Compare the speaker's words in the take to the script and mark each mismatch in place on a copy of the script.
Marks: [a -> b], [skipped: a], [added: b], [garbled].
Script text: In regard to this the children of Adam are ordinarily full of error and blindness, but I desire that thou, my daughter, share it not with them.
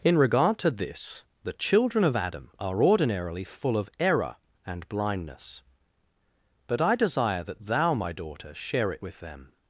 In regard to this the children of Adam are ordinarily full of error and blindness, but I desire that thou, my daughter, share it [skipped: not] with them.